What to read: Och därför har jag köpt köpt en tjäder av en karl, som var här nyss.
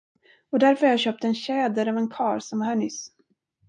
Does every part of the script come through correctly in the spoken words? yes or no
no